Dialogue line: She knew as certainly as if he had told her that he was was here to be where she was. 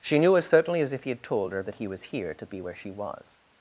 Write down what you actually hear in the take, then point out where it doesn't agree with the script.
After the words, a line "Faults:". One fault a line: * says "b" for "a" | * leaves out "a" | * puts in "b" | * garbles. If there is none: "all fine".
She knew as certainly as if he had told her that he was here to be where she was.
Faults:
* leaves out "was"